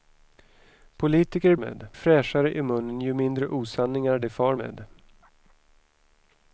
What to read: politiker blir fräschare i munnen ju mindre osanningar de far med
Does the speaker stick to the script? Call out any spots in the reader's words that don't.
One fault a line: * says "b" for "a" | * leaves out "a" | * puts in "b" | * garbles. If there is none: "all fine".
* says "med" for "blir"